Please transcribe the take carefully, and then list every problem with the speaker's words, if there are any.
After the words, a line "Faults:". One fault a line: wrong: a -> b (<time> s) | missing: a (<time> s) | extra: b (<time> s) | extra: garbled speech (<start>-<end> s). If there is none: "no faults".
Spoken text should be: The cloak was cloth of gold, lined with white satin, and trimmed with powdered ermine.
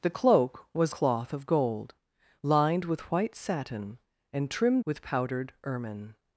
The cloak was cloth of gold, lined with white satin, and trimmed with powdered ermine.
Faults:
no faults